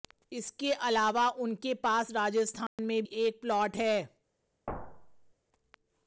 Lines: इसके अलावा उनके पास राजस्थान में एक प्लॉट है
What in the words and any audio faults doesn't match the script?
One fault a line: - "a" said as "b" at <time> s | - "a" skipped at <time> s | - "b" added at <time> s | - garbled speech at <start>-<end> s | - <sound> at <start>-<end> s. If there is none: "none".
- dropout at 2.7-2.8 s
- thud at 4.7-5.3 s